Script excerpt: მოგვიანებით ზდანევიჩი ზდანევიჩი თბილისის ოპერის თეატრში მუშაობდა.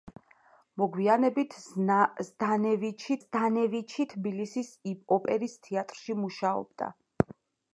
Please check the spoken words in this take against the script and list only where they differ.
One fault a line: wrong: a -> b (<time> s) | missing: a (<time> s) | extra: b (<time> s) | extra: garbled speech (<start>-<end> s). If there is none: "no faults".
no faults